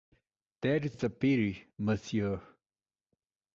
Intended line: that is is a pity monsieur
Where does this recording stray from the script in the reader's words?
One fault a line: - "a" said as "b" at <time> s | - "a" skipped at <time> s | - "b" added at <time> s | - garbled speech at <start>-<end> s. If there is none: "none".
none